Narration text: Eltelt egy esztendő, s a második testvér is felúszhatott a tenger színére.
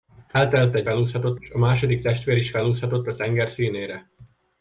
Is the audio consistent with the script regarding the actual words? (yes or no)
no